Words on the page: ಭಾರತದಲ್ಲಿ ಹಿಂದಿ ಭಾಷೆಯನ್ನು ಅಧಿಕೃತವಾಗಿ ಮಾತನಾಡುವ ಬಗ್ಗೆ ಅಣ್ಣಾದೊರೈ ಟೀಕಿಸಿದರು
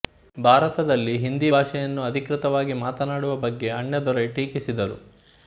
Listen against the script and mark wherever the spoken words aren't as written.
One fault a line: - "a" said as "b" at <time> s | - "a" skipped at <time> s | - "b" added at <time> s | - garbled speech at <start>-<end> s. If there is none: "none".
none